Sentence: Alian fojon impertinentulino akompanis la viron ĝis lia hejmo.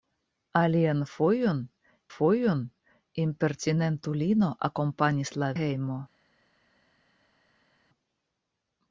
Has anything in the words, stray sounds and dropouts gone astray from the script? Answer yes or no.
yes